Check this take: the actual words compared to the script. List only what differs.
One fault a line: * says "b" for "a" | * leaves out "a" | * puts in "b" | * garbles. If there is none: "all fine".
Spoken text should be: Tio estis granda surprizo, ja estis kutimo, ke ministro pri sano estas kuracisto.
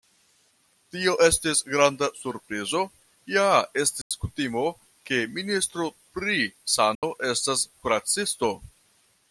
all fine